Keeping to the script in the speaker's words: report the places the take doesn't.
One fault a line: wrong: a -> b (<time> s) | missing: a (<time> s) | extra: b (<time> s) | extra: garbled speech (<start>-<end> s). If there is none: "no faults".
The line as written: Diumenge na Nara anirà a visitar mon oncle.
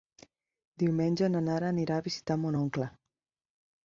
no faults